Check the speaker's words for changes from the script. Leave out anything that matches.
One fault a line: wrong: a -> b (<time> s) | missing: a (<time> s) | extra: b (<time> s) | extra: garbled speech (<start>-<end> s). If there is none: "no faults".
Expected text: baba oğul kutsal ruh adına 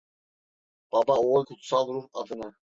no faults